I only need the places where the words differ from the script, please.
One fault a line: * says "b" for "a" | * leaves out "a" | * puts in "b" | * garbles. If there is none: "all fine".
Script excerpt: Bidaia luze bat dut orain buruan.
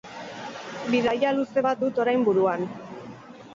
all fine